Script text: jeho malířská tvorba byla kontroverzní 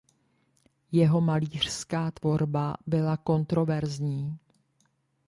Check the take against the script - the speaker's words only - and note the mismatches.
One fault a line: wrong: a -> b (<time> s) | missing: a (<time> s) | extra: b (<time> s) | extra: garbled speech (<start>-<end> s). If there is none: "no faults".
no faults